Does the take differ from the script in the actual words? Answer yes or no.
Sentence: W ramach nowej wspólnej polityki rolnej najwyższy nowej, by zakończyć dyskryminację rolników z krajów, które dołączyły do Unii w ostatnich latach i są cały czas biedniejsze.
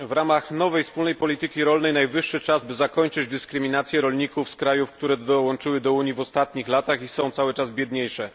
yes